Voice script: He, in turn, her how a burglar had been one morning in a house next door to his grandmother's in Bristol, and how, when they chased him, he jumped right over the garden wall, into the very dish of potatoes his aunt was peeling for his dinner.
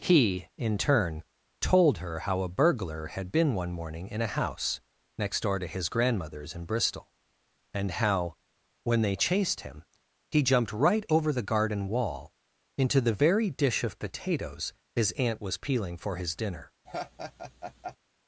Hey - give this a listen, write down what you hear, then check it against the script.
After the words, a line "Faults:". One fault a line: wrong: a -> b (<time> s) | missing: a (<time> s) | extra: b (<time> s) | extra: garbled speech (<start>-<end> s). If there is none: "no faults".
He, in turn, told her how a burglar had been one morning in a house next door to his grandmother's in Bristol, and how, when they chased him, he jumped right over the garden wall, into the very dish of potatoes his aunt was peeling for his dinner.
Faults:
extra: told (1.6 s)